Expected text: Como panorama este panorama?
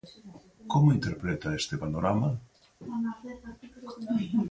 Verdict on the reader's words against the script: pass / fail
fail